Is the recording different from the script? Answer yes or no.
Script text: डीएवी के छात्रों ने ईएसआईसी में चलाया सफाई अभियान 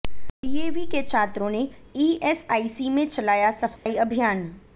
no